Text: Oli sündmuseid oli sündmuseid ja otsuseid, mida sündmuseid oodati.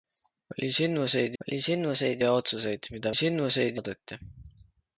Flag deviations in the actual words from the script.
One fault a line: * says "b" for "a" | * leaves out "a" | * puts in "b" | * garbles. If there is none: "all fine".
all fine